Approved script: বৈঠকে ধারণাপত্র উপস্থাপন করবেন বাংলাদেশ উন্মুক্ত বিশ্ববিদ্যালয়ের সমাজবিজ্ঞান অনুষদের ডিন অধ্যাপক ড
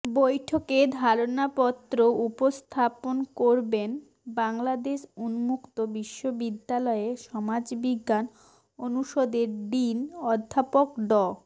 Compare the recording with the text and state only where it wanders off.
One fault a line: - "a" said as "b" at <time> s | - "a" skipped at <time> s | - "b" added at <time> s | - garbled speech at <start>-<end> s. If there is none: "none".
none